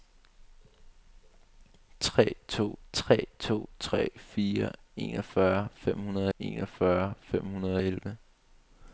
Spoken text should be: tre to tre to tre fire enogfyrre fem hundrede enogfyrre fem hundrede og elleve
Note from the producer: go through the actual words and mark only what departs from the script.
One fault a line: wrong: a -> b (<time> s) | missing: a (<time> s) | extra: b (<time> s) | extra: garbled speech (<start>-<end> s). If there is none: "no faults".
no faults